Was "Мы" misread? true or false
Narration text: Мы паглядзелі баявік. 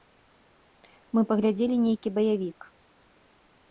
false